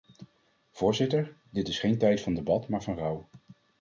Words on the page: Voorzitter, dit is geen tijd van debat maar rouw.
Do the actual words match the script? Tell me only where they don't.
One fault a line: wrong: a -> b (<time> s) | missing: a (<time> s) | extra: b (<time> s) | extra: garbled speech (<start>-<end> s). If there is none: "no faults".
extra: van (2.8 s)